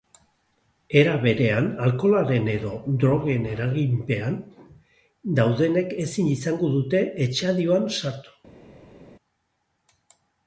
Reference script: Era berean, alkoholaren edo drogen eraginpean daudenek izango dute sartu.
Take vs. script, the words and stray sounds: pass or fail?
fail